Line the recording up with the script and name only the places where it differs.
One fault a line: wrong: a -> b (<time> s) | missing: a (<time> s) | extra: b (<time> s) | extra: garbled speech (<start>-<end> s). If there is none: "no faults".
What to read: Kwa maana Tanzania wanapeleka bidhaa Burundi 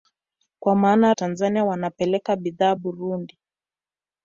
no faults